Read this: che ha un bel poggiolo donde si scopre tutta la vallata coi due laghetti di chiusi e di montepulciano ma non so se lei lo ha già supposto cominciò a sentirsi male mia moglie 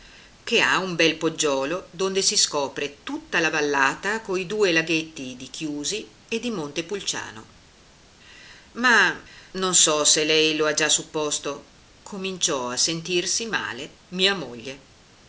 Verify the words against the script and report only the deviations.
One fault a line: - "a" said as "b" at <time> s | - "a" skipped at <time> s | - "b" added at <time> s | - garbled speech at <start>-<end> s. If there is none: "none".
none